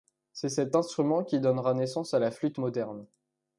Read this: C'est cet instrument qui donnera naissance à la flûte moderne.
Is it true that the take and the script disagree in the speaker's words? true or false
false